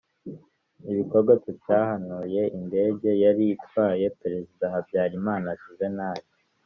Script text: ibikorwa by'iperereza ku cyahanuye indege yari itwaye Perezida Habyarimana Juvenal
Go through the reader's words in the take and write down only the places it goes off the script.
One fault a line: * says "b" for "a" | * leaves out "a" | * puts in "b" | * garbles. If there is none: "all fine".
* leaves out "by'iperereza"